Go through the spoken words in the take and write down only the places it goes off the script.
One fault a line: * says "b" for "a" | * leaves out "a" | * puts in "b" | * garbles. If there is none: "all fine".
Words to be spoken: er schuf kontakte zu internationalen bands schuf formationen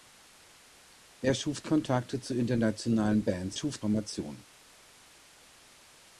all fine